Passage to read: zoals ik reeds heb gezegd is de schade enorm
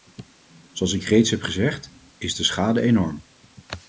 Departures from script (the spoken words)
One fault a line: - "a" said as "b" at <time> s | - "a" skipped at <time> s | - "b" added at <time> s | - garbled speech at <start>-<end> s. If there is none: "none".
none